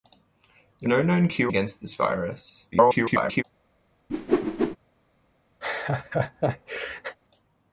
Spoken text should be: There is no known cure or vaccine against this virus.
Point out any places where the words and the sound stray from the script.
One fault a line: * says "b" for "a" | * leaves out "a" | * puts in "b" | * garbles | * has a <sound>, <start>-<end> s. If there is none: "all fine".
* leaves out "is"
* leaves out "or vaccine"
* garbles
* has a whoosh, 4.1-4.8 s
* has a laugh, 5.6-7.2 s